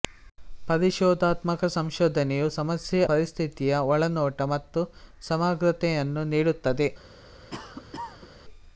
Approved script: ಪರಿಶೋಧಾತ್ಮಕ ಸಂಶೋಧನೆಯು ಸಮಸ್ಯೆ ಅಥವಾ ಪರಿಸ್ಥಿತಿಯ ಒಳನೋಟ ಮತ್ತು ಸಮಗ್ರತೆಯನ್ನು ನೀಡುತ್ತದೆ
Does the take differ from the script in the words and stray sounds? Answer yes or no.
yes